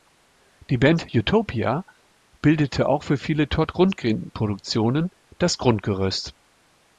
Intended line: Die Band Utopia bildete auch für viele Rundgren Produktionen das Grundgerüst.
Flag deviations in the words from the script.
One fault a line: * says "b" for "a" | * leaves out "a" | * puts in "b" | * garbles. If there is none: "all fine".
* puts in "Todd"